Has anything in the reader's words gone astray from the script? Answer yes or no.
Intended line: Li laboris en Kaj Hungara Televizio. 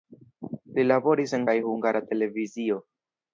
no